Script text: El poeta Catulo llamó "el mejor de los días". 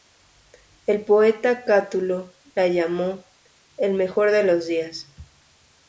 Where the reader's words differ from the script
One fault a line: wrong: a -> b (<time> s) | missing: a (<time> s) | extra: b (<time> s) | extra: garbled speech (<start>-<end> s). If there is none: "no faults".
extra: la (2.5 s)